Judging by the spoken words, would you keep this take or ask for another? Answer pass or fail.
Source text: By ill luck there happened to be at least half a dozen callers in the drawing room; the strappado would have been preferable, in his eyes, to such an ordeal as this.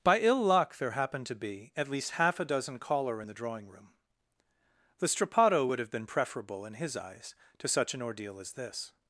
fail